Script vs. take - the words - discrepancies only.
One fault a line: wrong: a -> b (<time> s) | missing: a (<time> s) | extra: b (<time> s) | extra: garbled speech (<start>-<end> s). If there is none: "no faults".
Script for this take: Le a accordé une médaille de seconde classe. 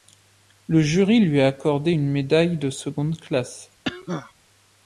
extra: jury lui (0.8 s)